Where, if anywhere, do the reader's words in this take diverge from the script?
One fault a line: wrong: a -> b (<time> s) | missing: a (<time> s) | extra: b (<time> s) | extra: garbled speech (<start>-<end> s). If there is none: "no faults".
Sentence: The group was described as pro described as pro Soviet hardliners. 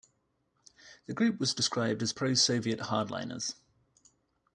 missing: described as pro (2.3 s)